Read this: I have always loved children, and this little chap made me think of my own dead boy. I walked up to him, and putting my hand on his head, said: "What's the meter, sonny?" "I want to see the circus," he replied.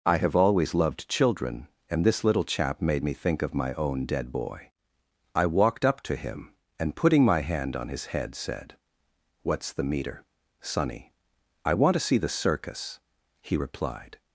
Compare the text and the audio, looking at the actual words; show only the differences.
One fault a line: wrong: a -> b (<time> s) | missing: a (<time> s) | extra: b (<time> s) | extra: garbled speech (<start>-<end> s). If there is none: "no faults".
no faults